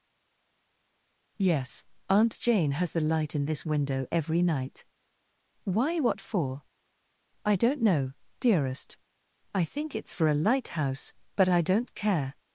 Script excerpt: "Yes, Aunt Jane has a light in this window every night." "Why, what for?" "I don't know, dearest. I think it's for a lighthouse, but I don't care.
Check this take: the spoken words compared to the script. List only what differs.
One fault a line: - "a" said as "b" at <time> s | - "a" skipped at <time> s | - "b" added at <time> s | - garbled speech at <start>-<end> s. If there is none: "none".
- "a" said as "the" at 2.9 s